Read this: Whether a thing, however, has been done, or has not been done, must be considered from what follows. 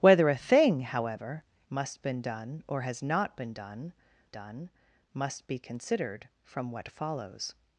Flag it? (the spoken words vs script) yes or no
yes